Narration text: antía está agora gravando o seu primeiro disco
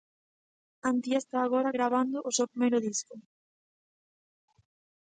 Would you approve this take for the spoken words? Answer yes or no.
yes